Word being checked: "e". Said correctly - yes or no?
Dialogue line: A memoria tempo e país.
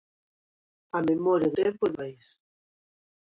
yes